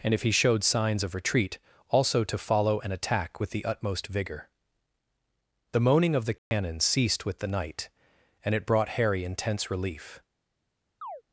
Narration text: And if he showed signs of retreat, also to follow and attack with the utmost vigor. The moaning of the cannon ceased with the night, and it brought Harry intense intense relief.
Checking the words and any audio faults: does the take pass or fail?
fail